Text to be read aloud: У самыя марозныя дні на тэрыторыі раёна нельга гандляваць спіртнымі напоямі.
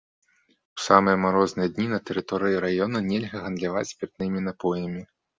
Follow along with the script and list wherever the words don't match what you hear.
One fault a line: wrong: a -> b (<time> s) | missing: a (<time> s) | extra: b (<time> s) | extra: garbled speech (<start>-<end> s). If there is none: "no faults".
no faults